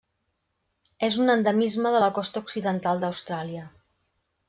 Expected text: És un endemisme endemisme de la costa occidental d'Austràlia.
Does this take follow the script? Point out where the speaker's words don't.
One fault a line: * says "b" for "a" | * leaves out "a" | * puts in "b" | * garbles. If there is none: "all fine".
* leaves out "endemisme"